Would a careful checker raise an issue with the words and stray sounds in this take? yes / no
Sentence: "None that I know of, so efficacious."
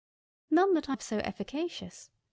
yes